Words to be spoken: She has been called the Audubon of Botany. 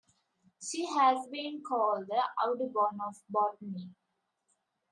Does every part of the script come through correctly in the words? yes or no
yes